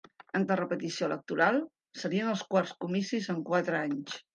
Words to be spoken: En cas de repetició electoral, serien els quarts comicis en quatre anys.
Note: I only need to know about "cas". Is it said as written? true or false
false